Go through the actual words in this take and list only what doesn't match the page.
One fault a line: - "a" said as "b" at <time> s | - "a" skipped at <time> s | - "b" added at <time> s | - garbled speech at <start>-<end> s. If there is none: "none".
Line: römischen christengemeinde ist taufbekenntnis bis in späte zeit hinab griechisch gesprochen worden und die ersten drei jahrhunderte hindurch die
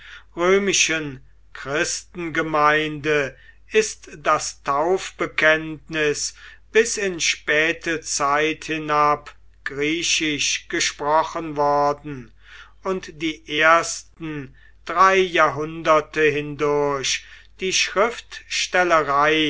- "das" added at 4.2 s